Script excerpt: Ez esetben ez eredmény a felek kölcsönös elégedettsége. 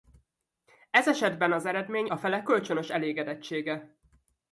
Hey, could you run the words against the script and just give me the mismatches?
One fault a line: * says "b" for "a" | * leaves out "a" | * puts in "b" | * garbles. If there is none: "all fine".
* says "az" for "ez"